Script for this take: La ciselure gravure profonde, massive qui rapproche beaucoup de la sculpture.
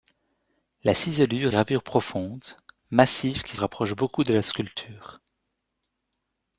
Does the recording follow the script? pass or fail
pass